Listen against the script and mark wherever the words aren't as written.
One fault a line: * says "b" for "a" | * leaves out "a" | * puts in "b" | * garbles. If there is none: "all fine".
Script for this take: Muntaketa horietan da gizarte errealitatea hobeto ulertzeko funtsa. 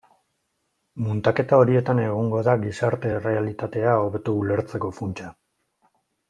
* puts in "egongo"